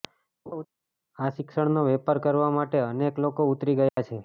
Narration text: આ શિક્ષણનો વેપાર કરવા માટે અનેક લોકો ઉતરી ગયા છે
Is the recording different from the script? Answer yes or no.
no